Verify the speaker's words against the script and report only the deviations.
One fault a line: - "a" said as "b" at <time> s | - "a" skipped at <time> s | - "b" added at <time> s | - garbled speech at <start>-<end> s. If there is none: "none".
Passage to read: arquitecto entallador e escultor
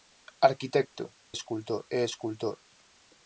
- "entallador" said as "escultor" at 1.4 s